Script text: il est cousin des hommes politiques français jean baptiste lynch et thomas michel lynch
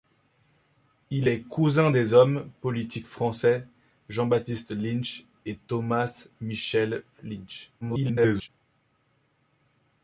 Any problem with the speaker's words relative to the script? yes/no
yes